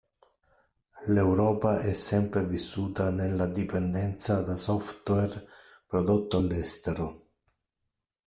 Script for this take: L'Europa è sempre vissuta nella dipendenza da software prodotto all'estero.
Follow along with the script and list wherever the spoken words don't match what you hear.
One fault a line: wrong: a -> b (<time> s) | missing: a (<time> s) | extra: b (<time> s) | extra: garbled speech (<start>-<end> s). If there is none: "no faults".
no faults